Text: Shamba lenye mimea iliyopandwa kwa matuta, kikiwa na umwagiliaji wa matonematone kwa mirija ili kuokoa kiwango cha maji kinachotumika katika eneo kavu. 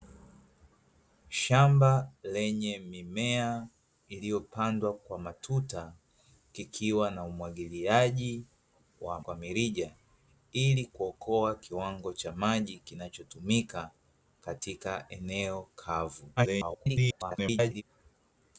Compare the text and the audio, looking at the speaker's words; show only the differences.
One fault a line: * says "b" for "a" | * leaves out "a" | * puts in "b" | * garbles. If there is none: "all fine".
* leaves out "matonematone"
* garbles